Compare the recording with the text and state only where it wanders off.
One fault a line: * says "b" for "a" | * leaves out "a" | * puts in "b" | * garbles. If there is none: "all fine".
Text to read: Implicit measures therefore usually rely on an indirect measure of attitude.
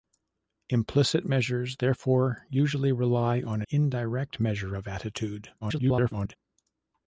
* leaves out "an"
* garbles